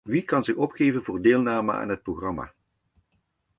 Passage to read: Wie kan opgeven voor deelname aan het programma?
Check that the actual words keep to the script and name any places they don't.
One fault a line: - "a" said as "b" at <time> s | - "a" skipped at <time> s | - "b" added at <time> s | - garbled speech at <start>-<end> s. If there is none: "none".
- "zich" added at 0.4 s